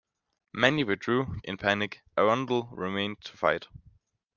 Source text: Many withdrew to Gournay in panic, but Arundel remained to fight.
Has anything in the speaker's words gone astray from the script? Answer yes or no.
yes